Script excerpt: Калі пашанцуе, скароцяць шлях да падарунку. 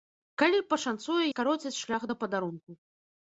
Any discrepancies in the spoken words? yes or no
no